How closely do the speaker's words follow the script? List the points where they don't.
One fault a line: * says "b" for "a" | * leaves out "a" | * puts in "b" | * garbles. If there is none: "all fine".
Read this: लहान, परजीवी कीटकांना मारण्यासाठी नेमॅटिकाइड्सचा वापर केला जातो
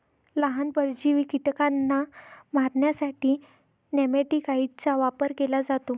all fine